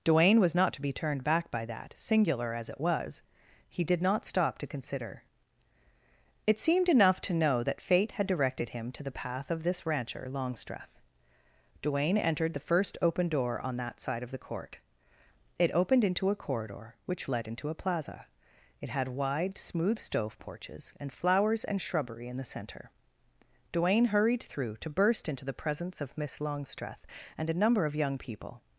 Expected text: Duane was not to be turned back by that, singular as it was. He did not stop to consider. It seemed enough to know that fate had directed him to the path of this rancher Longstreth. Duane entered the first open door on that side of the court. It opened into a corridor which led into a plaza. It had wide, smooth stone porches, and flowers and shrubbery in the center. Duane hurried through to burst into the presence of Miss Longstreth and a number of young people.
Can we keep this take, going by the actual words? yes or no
no